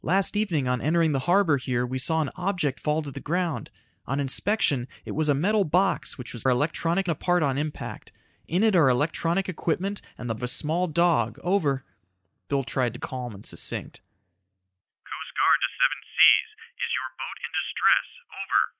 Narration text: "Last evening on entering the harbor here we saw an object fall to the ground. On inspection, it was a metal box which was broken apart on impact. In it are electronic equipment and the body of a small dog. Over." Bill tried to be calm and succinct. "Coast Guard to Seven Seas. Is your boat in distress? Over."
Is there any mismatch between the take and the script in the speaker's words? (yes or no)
yes